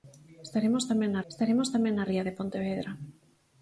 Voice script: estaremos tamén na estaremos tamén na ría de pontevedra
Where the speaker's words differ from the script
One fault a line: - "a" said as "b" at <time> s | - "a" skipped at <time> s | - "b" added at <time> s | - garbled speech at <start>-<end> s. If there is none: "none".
none